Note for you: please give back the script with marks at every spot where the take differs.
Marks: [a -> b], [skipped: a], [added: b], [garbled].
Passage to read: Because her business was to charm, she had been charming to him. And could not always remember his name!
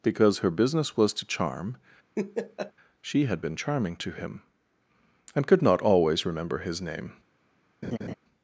Because her business was to charm, she had been charming to him. And could not always remember his name!